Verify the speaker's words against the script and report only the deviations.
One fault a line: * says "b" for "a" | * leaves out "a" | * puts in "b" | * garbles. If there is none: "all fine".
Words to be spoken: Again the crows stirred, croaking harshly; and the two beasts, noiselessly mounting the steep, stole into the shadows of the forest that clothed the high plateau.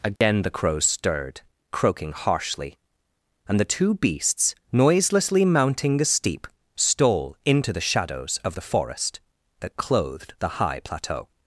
all fine